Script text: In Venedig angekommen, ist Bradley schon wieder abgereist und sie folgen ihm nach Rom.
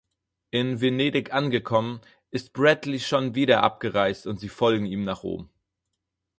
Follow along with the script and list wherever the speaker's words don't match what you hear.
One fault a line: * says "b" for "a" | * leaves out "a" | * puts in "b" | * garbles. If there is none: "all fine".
all fine